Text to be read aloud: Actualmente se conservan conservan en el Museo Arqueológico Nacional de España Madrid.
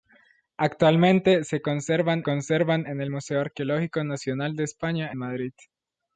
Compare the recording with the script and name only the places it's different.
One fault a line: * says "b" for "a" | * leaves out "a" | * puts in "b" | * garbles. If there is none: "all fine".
all fine